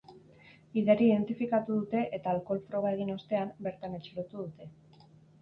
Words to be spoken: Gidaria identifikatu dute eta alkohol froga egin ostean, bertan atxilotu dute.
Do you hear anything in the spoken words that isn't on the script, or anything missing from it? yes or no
no